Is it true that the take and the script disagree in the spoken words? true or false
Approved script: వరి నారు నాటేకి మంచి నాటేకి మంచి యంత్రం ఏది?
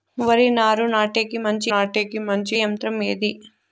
false